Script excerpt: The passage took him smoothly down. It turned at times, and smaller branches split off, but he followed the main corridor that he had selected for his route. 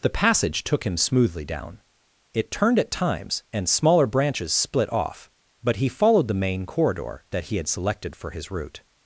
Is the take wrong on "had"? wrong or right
right